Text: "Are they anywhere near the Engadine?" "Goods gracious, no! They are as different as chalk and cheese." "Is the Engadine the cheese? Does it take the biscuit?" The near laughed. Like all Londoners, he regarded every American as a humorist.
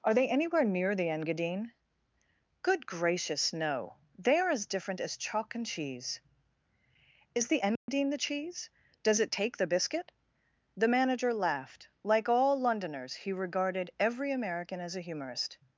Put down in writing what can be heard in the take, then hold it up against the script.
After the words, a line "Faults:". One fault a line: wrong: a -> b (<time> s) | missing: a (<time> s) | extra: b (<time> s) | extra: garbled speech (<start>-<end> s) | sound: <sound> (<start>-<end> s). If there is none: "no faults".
"Are they anywhere near the Engadine?" "Good gracious, no! They are as different as chalk and cheese." "Is the Engadine the cheese? Does it take the biscuit?" The manager laughed. Like all Londoners, he regarded every American as a humorist.
Faults:
wrong: Goods -> Good (2.6 s)
sound: dropout (7.8-7.9 s)
wrong: near -> manager (10.9 s)